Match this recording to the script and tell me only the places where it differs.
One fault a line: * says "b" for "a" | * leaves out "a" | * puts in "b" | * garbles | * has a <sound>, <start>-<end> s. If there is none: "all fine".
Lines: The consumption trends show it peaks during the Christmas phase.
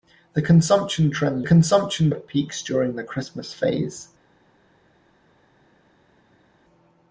* says "consumption" for "show"